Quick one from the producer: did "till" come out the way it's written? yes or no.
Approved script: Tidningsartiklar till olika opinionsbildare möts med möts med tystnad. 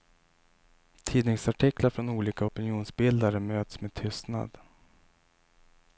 no